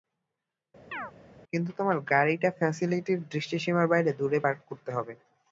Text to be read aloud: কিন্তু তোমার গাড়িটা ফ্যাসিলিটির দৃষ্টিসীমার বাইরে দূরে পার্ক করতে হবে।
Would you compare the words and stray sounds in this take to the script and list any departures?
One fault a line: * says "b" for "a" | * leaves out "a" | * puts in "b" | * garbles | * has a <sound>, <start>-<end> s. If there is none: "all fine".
* has a chirp, 0.9-1.1 s